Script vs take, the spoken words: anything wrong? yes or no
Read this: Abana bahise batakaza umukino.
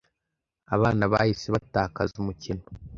no